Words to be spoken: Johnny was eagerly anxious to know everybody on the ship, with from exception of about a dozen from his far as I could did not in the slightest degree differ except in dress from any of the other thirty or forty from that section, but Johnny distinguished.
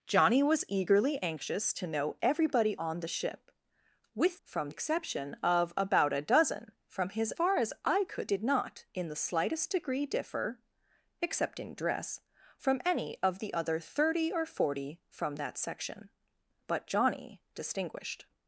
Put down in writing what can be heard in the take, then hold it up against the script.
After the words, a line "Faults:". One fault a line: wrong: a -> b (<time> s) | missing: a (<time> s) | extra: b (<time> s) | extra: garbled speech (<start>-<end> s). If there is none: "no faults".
Johnny was eagerly anxious to know everybody on the ship, with from exception of about a dozen from his far as I could did not in the slightest degree differ except in dress from any of the other thirty or forty from that section, but Johnny distinguished.
Faults:
no faults